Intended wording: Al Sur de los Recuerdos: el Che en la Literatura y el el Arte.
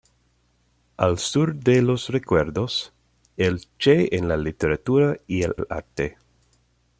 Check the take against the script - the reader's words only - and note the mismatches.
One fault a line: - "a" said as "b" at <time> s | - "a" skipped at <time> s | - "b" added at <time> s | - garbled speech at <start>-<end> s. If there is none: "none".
none